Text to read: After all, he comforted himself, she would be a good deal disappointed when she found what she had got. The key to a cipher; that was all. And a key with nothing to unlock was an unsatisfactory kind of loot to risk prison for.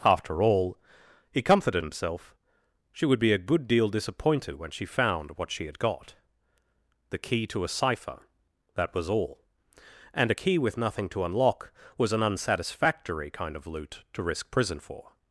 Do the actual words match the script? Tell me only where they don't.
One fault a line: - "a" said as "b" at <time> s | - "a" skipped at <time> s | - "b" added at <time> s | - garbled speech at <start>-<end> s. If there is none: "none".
none